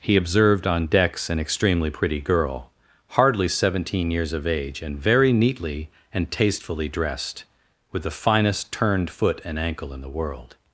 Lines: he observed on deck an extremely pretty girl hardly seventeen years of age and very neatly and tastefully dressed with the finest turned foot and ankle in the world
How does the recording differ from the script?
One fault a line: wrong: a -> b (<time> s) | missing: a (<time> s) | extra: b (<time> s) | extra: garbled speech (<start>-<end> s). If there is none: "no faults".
wrong: deck -> decks (0.9 s)